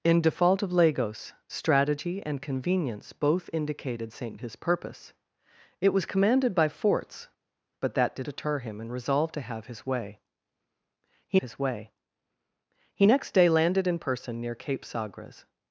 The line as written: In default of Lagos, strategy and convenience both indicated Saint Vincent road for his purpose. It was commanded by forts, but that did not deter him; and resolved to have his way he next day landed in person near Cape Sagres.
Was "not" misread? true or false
true